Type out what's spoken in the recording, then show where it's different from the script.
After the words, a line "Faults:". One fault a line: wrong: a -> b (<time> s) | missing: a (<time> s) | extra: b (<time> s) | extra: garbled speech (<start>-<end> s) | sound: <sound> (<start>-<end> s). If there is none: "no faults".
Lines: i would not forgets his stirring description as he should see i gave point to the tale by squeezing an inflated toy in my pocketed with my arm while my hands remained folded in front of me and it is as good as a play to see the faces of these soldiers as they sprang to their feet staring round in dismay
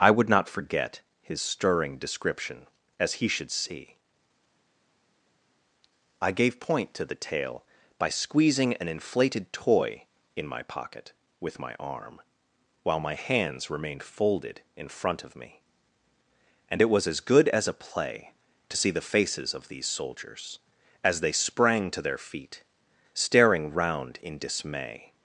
i would not forget his stirring description as he should see i gave point to the tale by squeezing an inflated toy in my pocket with my arm while my hands remained folded in front of me and it was as good as a play to see the faces of these soldiers as they sprang to their feet staring round in dismay
Faults:
wrong: forgets -> forget (0.5 s)
wrong: pocketed -> pocket (10.6 s)
wrong: is -> was (16.9 s)